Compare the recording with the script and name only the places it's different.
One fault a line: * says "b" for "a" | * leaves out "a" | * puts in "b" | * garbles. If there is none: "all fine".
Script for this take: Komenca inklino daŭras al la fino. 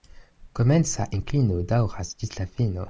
* says "ĝis" for "al"